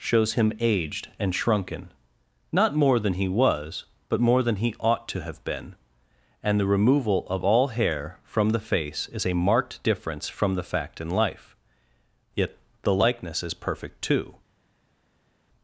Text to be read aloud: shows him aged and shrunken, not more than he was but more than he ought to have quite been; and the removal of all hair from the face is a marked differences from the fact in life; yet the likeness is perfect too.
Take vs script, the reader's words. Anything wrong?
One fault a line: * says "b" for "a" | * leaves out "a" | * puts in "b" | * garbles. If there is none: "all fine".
* leaves out "quite"
* says "difference" for "differences"